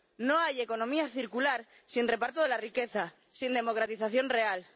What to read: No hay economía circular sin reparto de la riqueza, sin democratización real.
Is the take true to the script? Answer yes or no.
yes